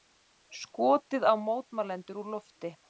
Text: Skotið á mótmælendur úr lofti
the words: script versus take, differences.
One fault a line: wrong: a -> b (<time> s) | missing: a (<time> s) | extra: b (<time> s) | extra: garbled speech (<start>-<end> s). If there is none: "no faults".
no faults